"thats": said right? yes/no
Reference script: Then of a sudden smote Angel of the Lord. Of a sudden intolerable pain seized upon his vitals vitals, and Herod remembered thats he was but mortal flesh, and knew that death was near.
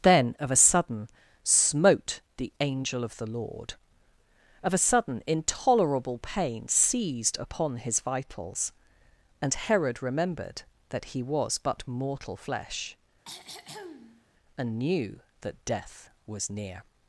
no